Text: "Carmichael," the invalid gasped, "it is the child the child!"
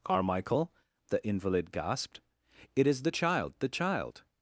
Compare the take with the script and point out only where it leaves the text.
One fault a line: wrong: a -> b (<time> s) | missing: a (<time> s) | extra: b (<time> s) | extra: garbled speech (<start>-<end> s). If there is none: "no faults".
no faults